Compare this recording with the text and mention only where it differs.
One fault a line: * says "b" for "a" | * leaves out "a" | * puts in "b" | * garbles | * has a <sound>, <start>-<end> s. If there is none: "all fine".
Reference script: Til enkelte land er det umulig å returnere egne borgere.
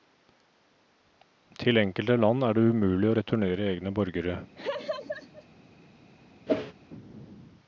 * has a laugh, 4.6-5.5 s
* has a whoosh, 6.5-6.7 s